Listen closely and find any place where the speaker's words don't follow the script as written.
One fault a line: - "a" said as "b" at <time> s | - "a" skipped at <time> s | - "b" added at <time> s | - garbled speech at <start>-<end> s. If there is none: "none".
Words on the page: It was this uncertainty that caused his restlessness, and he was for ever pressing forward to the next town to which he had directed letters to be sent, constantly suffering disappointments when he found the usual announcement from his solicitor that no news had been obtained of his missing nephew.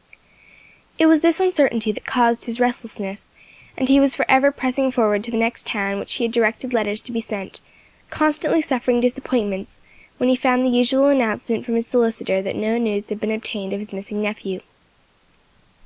none